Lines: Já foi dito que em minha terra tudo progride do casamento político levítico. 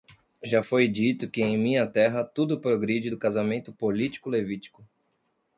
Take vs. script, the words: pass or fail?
pass